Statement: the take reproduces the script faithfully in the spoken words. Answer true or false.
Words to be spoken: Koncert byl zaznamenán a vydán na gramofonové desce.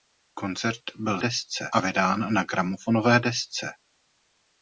false